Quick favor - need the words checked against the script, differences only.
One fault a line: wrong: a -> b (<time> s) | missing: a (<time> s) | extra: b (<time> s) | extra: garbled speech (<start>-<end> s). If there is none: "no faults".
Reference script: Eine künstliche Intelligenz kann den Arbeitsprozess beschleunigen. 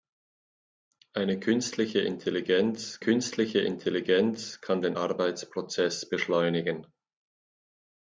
extra: künstliche Intelligenz (3.0 s)